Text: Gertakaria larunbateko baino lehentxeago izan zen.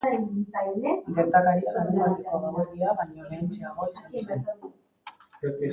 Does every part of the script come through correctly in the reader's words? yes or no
no